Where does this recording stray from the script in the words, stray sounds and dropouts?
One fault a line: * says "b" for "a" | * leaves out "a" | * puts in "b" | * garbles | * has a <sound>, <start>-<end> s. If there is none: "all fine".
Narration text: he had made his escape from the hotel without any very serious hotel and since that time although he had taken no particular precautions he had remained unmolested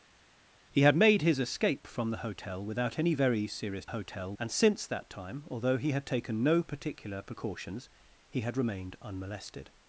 all fine